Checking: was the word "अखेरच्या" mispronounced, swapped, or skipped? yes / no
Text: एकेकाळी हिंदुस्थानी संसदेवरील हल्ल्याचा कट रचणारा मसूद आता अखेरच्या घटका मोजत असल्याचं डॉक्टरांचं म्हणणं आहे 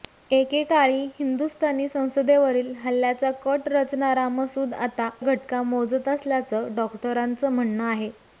yes